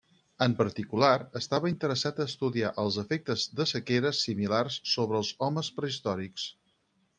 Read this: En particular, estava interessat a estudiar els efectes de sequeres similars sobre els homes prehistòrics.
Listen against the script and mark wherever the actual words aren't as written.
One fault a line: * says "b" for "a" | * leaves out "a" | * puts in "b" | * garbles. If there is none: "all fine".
all fine